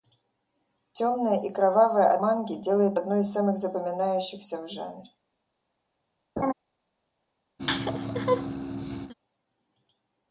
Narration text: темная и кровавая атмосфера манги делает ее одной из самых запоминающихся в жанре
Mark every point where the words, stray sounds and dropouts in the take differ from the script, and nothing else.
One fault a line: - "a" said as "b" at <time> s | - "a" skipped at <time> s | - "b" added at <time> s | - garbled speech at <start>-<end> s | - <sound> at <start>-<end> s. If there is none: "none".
- "атмосфера" skipped at 2.2 s
- "ее" skipped at 3.0 s
- laugh at 6.4-6.5 s
- laugh at 7.6-9.1 s